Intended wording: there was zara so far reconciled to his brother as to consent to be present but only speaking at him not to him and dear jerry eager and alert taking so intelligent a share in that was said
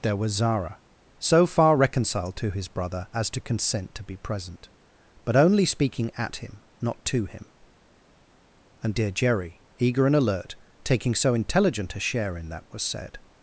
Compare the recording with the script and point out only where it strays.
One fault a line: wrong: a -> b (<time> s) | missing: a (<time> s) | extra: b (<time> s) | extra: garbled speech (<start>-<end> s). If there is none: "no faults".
no faults